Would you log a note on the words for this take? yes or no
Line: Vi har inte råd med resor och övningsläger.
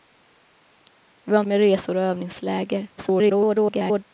yes